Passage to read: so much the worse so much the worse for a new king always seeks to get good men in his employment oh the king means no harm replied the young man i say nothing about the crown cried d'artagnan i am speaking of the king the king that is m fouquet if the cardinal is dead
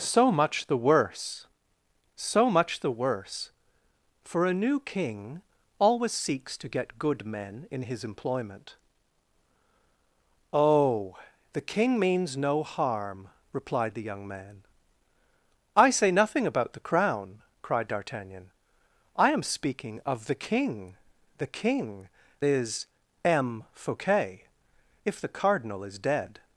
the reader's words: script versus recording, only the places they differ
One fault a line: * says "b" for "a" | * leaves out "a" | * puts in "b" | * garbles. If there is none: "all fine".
* leaves out "that"